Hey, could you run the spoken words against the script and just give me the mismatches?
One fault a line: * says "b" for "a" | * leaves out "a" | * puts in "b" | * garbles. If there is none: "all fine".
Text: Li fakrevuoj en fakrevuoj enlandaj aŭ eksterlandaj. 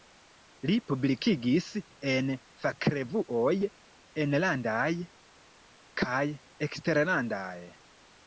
* says "publikigis" for "fakrevuoj"
* says "kaj" for "aŭ"